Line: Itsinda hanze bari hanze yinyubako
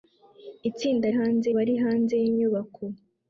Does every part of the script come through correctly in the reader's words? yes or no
yes